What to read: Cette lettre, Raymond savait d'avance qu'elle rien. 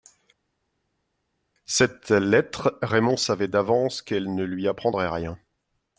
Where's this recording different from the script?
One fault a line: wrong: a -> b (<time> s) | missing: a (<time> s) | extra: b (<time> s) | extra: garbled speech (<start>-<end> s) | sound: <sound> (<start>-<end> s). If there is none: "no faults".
extra: ne lui apprendrait (4.3 s)